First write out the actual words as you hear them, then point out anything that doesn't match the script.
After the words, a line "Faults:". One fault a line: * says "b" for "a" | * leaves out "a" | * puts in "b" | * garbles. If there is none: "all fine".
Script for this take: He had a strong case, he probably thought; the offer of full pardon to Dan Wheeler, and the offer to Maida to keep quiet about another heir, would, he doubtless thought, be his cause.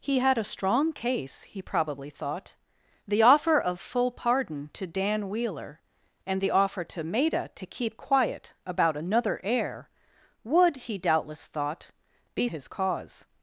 He had a strong case, he probably thought; the offer of full pardon to Dan Wheeler, and the offer to Maida to keep quiet about another heir, would, he doubtless thought, be his cause.
Faults:
all fine